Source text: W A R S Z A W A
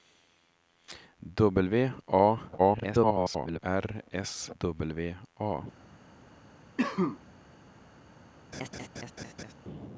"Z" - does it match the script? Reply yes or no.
no